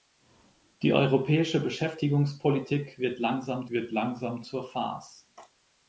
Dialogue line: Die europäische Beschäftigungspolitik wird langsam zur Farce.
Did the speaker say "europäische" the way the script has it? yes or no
yes